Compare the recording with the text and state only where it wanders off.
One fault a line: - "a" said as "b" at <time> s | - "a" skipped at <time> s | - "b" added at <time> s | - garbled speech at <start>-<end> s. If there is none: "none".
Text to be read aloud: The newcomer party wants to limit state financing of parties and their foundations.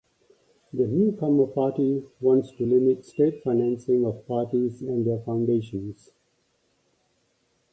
none